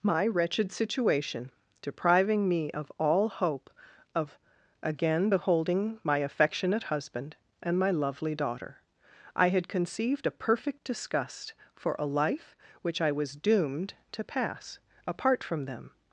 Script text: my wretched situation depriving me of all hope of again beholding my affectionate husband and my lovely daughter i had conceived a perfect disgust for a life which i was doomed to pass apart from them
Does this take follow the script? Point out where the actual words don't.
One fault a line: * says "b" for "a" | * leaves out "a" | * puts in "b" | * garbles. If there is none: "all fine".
all fine